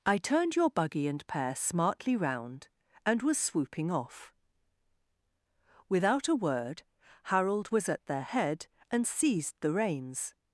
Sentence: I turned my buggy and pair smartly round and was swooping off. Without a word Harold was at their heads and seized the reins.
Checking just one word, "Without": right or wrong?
right